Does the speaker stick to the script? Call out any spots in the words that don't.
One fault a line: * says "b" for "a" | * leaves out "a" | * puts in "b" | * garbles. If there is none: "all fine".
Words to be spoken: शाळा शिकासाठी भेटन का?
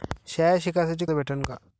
all fine